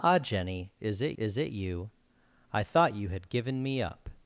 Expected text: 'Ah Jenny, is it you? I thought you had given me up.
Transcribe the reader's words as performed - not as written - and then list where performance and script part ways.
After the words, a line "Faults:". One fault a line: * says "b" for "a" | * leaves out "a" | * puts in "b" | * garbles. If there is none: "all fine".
'Ah Jenny, is it is it you? I thought you had given me up.
Faults:
* puts in "is it"